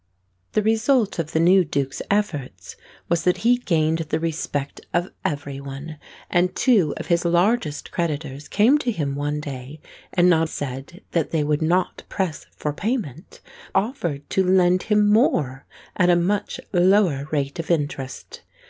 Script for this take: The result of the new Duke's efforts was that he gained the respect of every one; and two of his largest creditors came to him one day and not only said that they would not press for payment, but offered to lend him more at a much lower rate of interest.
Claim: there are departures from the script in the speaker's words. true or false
true